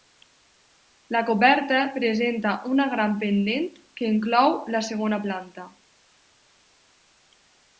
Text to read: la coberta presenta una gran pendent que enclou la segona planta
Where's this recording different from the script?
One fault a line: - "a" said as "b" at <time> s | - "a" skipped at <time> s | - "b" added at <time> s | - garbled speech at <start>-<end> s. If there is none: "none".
none